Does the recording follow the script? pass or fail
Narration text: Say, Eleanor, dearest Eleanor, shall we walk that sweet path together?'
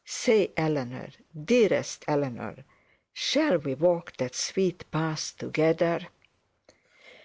pass